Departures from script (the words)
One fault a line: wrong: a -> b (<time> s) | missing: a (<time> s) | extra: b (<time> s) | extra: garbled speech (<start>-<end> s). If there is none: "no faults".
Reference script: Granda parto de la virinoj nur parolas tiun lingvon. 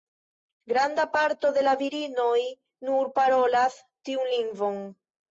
no faults